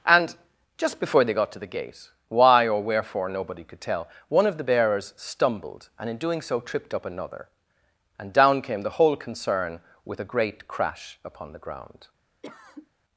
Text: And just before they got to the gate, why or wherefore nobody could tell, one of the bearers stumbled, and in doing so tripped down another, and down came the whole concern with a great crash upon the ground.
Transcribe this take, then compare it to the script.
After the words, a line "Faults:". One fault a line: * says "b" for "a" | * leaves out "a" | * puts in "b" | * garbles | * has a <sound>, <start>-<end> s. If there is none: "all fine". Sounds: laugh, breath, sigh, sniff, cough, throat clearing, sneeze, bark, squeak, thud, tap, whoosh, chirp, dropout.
And just before they got to the gate, why or wherefore nobody could tell, one of the bearers stumbled, and in doing so tripped up another, and down came the whole concern with a great crash upon the ground.
Faults:
* says "up" for "down"
* has a cough, 12.4-12.9 s